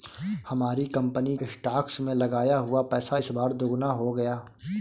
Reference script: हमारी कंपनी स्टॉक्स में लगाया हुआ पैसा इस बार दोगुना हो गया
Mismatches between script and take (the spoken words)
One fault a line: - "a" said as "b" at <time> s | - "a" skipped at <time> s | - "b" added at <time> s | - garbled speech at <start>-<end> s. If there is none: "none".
none